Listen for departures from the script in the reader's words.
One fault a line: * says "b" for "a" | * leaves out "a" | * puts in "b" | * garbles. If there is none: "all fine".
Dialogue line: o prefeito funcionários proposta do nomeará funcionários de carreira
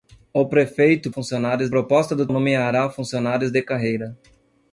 all fine